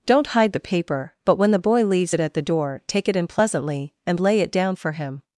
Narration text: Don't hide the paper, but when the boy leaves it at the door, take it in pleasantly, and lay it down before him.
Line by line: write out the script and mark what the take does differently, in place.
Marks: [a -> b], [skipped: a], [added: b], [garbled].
Don't hide the paper, but when the boy leaves it at the door, take it in pleasantly, and lay it down [before -> for] him.